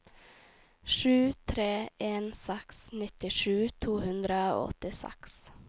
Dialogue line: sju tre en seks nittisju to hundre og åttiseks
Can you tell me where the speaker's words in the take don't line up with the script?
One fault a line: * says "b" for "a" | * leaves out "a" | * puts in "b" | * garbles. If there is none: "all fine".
all fine